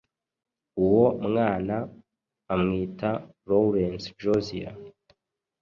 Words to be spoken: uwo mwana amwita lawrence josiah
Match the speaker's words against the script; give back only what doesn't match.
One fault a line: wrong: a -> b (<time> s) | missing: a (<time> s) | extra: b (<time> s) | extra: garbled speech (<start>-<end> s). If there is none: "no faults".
no faults